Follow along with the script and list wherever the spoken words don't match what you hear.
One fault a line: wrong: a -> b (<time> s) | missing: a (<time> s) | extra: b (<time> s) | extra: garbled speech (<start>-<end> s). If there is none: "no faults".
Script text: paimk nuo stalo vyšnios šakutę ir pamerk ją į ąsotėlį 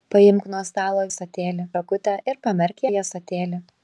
wrong: vyšnios -> ąsotėlį (1.1 s)
missing: ją (2.8 s)